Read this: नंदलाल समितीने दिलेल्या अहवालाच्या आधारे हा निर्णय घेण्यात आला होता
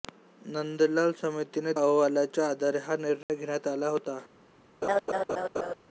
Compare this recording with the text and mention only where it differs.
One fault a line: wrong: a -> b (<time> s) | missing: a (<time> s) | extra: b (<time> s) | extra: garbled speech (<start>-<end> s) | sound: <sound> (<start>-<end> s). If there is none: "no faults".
missing: दिलेल्या (1.7 s)
sound: dropout (3.2-3.3 s)
sound: laugh (4.8-5.7 s)